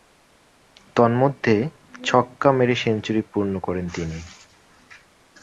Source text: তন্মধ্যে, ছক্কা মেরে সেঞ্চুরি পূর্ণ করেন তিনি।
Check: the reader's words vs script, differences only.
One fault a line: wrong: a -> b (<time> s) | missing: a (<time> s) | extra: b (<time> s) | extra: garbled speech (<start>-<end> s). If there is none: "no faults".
no faults